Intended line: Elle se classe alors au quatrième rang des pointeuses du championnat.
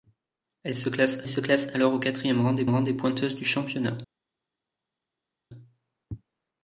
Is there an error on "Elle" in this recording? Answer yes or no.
no